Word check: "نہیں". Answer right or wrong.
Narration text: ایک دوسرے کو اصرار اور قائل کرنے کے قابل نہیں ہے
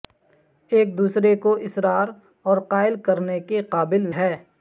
wrong